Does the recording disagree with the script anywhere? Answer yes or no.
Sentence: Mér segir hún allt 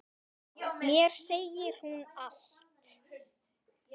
no